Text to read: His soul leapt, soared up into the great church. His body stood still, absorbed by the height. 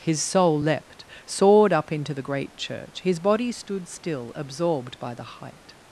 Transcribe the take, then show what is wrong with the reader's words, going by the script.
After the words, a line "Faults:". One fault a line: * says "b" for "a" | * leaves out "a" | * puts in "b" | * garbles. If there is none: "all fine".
His soul leapt, soared up into the great church. His body stood still, absorbed by the height.
Faults:
all fine